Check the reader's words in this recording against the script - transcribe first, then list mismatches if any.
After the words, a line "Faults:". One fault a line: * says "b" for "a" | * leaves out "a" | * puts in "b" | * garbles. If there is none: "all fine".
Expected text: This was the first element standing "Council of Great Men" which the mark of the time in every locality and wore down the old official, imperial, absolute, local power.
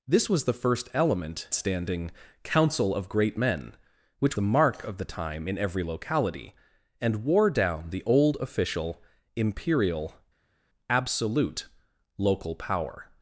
This was the first element standing "Council of Great Men" which the mark of the time in every locality and wore down the old official, imperial, absolute, local power.
Faults:
all fine